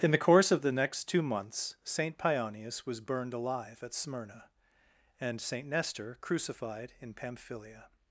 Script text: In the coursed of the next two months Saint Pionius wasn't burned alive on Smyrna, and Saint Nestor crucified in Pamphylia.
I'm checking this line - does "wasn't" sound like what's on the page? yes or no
no